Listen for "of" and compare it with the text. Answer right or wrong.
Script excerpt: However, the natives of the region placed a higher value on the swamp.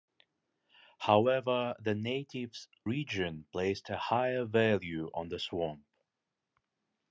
wrong